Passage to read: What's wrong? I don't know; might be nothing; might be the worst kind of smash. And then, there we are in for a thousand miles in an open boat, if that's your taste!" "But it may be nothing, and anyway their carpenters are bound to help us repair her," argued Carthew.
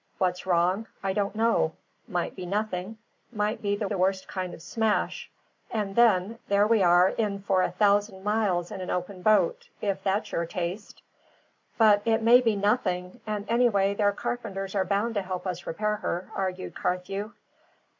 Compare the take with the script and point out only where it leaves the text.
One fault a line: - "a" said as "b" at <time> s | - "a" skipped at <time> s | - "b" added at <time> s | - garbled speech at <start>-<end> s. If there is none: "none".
- "the" added at 3.8 s